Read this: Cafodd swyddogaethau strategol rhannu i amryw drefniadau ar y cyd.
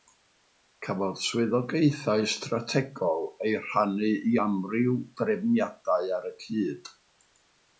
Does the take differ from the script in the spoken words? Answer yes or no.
yes